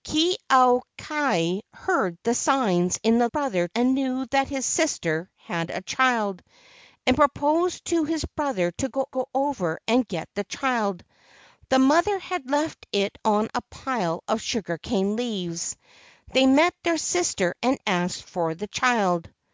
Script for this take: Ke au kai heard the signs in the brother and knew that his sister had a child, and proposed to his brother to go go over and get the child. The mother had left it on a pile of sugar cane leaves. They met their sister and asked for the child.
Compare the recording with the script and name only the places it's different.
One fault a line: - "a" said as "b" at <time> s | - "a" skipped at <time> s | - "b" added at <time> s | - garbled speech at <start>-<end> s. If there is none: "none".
none